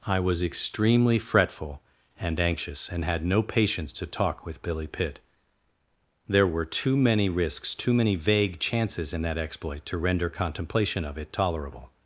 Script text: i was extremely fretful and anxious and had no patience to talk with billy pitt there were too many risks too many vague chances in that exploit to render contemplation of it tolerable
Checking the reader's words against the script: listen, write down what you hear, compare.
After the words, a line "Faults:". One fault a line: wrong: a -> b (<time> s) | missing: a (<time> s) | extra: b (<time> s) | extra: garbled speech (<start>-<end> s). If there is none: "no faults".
i was extremely fretful and anxious and had no patience to talk with billy pitt there were too many risks too many vague chances in that exploit to render contemplation of it tolerable
Faults:
no faults